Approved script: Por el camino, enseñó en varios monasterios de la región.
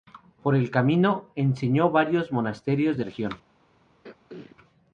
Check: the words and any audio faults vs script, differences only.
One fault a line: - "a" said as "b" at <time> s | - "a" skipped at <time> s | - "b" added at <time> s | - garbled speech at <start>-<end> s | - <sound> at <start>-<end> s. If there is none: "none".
- "la" skipped at 3.0 s
- throat clearing at 4.0-4.6 s